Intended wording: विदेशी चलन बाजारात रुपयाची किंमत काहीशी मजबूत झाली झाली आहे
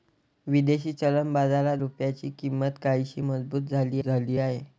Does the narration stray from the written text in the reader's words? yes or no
no